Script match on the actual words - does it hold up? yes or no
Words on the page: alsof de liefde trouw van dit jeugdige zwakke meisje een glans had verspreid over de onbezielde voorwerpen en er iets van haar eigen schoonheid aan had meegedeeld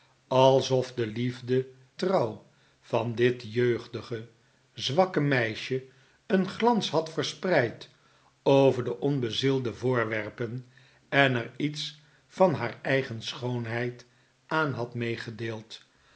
yes